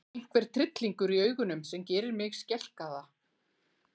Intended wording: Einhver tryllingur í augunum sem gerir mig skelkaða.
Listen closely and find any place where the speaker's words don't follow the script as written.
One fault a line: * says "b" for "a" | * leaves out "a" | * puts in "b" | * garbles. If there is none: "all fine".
all fine